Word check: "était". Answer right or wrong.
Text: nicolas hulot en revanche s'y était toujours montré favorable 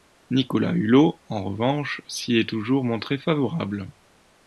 wrong